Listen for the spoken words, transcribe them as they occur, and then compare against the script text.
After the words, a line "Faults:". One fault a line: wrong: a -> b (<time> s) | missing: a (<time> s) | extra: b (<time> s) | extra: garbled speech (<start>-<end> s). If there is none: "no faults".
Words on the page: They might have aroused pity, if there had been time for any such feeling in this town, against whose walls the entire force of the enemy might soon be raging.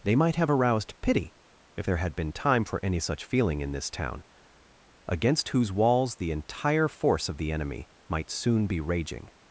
They might have aroused pity, if there had been time for any such feeling in this town, against whose walls the entire force of the enemy might soon be raging.
Faults:
no faults